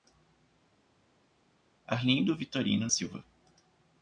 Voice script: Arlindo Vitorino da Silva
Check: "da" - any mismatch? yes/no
yes